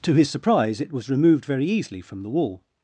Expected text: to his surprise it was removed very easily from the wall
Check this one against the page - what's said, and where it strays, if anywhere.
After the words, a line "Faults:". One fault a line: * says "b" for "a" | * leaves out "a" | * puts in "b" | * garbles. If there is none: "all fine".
to his surprise it was removed very easily from the wall
Faults:
all fine